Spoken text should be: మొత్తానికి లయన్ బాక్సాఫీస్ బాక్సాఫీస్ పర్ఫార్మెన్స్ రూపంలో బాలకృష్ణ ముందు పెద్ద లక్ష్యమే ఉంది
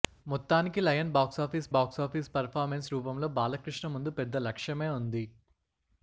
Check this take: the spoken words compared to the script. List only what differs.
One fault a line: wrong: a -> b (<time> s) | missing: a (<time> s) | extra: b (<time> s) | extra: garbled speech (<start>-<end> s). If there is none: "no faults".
no faults